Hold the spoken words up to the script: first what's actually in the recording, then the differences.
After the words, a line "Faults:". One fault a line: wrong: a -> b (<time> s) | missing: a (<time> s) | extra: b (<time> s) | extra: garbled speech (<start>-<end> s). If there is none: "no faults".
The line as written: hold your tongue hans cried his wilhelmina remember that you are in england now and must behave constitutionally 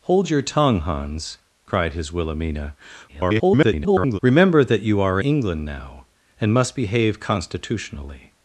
hold your tongue hans cried his wilhelmina [garbled] remember that you are england now and must behave constitutionally
Faults:
extra: garbled speech (3.1-4.2 s)
missing: in (5.2 s)